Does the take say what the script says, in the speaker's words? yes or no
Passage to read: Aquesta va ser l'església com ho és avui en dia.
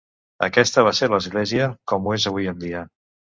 yes